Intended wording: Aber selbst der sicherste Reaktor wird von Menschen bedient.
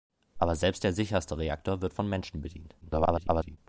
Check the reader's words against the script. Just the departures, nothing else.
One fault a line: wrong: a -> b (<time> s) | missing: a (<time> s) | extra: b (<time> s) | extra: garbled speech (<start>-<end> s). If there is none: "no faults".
extra: garbled speech (2.8-3.6 s)